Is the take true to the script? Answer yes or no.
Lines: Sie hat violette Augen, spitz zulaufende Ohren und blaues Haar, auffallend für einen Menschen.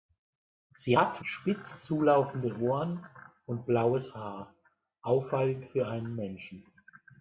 no